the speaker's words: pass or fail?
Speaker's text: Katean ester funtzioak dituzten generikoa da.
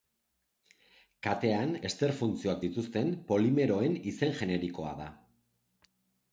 fail